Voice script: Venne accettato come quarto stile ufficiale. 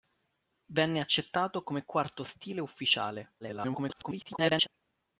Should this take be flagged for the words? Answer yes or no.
yes